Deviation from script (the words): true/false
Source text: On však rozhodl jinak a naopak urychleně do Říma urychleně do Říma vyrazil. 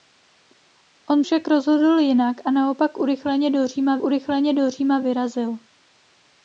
false